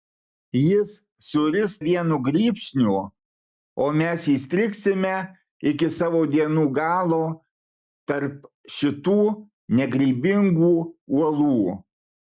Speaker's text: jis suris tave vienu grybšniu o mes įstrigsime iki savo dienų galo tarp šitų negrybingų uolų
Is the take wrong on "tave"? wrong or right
wrong